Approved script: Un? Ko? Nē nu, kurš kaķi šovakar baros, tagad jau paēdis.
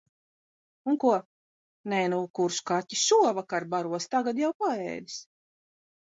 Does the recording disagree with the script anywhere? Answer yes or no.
no